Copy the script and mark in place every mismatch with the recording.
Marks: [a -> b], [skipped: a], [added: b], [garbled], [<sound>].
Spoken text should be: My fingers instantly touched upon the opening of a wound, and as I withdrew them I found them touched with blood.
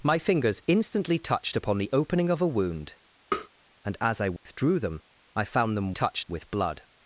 My fingers instantly touched upon the opening of a wound, [tap] and as I withdrew [dropout] them I found them touched with blood.